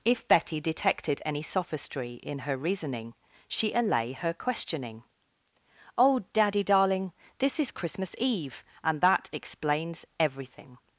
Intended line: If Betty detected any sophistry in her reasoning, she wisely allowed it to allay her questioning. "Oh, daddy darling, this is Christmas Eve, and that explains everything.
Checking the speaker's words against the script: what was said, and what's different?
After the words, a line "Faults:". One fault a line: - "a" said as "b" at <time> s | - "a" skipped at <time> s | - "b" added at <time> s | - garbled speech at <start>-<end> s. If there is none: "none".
If Betty detected any sophistry in her reasoning, she allay her questioning. "Oh, daddy darling, this is Christmas Eve, and that explains everything.
Faults:
- "wisely allowed it to" skipped at 3.7 s